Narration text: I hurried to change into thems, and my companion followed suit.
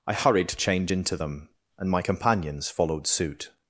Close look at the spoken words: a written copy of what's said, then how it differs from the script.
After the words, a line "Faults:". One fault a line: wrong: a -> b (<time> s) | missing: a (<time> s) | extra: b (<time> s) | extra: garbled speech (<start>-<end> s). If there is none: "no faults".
I hurried to change into them, and my companions followed suit.
Faults:
wrong: thems -> them (1.2 s)
wrong: companion -> companions (2.0 s)